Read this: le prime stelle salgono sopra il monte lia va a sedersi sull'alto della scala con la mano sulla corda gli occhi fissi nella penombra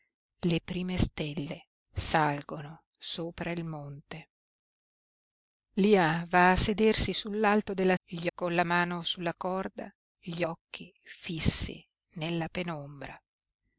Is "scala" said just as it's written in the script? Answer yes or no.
no